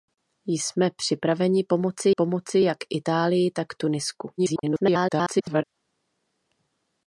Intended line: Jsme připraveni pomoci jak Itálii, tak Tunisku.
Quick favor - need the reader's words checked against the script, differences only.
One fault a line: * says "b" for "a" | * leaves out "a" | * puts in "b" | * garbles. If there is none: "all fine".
* puts in "pomoci"
* garbles